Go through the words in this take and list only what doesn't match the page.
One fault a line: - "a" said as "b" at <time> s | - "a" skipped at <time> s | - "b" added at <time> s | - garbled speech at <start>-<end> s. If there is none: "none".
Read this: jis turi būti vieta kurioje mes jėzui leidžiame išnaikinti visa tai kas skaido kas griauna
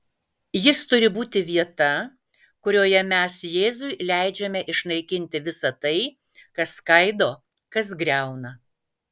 none